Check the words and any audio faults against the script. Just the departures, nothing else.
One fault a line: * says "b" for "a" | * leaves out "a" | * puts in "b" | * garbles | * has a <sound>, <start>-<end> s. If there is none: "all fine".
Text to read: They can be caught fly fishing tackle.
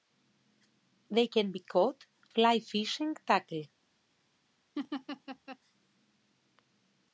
* has a laugh, 4.8-5.6 s